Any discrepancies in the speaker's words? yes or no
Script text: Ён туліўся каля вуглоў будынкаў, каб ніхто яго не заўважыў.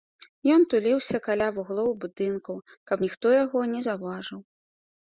no